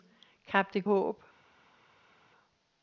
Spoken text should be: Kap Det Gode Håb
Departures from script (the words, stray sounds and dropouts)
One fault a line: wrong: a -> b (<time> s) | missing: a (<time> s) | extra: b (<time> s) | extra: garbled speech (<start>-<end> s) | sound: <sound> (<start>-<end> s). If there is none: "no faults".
missing: Gode (0.9 s)